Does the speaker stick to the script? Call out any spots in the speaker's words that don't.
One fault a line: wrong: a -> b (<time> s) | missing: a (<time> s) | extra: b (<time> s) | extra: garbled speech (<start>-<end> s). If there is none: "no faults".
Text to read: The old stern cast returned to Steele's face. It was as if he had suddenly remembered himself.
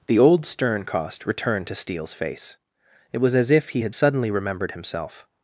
wrong: cast -> cost (0.8 s)